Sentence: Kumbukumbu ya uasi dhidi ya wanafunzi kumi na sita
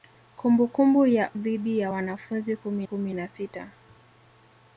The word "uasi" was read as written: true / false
false